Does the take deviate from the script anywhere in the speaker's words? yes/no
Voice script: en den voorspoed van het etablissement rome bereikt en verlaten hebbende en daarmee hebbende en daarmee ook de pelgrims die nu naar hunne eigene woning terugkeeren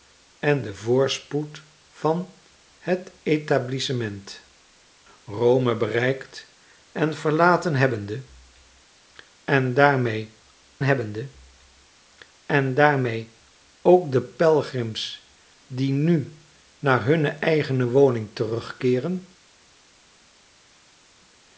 no